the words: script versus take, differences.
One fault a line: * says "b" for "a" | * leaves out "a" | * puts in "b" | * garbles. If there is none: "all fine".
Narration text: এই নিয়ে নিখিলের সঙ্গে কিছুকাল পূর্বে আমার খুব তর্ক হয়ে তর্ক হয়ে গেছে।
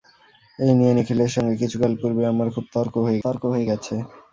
all fine